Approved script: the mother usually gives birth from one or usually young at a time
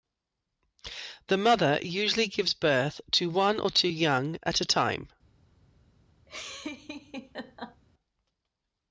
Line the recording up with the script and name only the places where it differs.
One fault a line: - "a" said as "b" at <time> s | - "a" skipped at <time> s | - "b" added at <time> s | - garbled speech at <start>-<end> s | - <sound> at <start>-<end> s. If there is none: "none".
- "from" said as "to" at 3.1 s
- "usually" said as "two" at 3.7 s
- laugh at 6.3-7.8 s